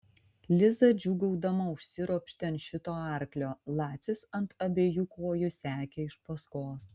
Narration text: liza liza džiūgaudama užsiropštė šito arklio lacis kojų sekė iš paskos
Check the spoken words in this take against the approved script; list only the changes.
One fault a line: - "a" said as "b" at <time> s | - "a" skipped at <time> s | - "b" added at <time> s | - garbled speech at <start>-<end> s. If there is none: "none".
- "liza" skipped at 0.9 s
- "ant" added at 2.5 s
- "ant abiejų" added at 4.4 s